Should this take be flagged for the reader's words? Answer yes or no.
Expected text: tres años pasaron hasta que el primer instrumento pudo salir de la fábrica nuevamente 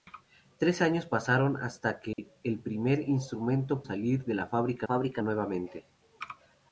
yes